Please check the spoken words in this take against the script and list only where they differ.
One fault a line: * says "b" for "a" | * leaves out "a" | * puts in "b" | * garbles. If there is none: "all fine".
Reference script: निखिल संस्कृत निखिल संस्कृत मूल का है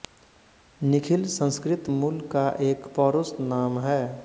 * says "मूल का एक पौरुष नाम" for "निखिल संस्कृत मूल का"